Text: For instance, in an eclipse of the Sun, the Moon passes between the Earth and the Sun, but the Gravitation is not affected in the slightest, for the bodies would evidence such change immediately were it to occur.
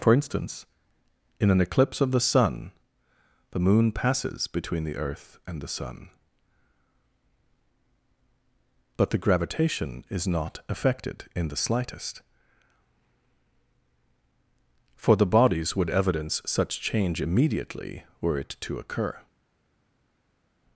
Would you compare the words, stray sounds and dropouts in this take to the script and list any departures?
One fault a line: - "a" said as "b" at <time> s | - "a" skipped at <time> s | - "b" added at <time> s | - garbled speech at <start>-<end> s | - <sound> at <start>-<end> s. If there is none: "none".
none